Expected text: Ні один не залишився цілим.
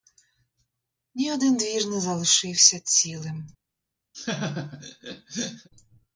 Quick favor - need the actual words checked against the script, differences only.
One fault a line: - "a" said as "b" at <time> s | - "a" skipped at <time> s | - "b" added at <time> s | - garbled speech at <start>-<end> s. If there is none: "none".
- "двір" added at 1.6 s